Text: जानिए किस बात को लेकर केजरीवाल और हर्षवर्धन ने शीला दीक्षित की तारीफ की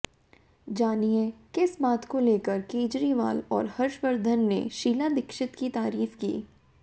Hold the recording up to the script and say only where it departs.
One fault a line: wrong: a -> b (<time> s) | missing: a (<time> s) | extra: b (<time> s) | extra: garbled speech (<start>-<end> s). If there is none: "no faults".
no faults